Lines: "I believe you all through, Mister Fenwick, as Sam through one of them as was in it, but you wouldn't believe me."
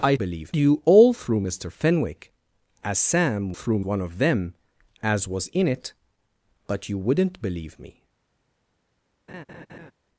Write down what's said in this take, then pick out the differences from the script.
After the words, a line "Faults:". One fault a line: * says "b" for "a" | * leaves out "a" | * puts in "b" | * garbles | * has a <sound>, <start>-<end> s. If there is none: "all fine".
"I believe you all through, Mister Fenwick, as Sam through one of them as was in it, but you wouldn't believe me."
Faults:
* has a laugh, 9.3-9.9 s